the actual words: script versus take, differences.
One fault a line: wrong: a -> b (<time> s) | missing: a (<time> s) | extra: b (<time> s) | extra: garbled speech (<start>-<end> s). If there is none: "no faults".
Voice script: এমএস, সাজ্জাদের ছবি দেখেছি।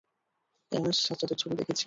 no faults